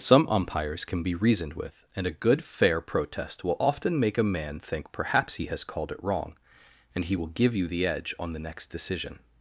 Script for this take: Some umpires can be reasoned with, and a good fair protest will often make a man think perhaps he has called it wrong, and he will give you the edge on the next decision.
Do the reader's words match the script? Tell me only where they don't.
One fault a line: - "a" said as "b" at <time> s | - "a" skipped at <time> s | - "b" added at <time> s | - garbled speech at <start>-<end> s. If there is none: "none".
none